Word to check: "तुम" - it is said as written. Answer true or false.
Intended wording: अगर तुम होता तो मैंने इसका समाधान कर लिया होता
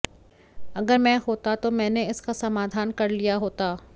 false